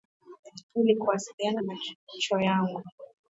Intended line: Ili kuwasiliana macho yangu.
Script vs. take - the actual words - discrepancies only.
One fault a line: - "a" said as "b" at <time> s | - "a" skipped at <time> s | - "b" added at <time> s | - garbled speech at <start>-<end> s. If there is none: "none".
none